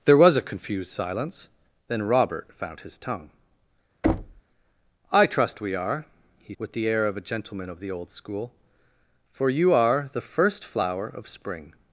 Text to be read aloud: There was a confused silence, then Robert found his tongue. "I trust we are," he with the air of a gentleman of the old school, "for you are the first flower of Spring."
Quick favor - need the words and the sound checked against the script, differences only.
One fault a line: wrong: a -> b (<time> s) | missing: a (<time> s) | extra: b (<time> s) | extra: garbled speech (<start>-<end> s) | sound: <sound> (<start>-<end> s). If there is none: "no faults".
sound: thud (4.0-4.4 s)